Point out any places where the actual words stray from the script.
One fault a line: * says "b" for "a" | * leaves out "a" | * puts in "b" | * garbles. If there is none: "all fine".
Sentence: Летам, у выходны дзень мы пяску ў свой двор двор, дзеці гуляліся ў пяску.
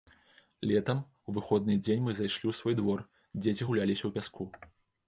* says "зайшлі" for "пяску"
* leaves out "двор"